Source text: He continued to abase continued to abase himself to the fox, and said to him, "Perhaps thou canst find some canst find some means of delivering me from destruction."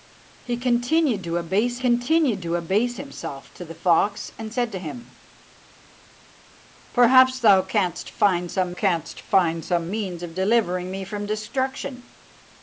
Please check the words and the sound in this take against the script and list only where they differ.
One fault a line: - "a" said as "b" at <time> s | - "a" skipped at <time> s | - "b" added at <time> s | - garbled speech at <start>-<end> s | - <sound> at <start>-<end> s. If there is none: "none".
none